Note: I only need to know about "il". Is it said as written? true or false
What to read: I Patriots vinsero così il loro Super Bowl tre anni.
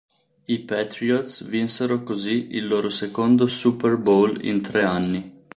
true